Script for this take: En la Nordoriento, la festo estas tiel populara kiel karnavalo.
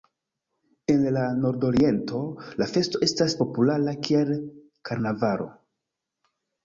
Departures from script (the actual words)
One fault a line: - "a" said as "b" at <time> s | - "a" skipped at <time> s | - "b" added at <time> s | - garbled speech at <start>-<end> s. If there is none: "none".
- "tiel" skipped at 3.4 s